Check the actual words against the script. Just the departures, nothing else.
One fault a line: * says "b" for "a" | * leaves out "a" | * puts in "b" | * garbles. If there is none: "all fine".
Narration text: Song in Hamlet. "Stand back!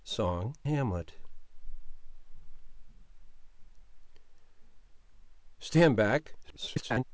* leaves out "in"
* garbles